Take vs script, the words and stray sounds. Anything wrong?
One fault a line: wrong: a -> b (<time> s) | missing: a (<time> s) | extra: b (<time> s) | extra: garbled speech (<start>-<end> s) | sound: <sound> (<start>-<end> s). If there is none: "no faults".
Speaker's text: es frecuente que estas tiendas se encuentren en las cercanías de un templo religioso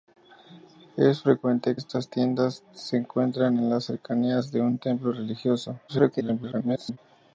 missing: que (1.8 s)
extra: garbled speech (5.9-7.0 s)